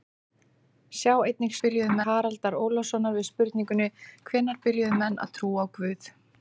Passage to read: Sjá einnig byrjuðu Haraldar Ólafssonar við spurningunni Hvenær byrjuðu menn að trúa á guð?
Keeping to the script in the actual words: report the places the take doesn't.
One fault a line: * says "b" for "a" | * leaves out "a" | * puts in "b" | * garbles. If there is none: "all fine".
all fine